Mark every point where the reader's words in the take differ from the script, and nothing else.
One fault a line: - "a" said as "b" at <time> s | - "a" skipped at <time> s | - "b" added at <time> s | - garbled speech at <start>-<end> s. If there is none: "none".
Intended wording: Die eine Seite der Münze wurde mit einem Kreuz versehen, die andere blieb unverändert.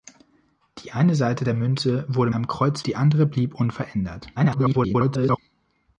- "mit" skipped at 2.3 s
- "versehen" skipped at 2.8 s
- garbled speech at 4.4-5.4 s